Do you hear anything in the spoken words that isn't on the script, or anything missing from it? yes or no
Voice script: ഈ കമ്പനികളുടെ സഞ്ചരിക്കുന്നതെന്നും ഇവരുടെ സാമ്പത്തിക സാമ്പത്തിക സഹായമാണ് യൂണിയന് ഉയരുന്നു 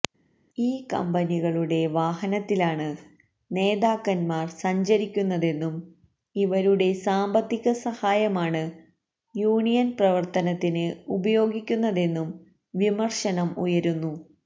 yes